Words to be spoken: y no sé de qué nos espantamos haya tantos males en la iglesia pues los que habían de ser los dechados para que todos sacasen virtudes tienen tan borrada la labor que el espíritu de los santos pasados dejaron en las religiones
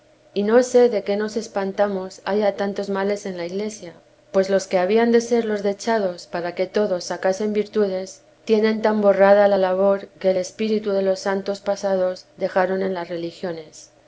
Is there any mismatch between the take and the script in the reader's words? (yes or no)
no